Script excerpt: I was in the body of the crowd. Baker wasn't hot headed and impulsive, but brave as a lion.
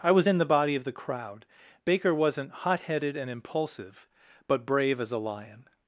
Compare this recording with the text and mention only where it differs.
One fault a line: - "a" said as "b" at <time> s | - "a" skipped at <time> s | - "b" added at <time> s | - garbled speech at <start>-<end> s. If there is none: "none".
none